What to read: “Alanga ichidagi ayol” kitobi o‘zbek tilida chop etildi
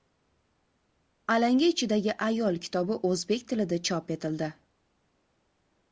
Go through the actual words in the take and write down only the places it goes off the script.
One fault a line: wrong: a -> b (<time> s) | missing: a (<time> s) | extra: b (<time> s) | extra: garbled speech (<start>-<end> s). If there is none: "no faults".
no faults